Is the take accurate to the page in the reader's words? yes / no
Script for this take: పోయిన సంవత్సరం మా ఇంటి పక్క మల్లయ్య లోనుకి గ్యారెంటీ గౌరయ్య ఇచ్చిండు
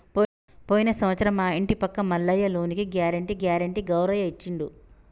no